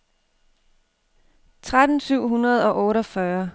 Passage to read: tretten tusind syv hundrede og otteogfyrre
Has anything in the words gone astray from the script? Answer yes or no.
yes